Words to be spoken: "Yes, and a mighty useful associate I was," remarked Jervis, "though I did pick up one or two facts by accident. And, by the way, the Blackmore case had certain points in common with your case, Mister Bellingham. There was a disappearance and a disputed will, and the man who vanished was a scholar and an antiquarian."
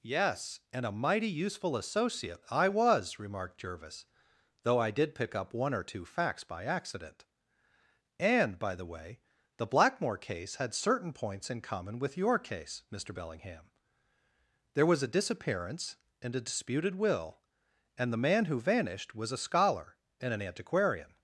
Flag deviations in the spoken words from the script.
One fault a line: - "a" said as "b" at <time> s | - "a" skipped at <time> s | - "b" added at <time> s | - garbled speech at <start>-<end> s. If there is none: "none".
none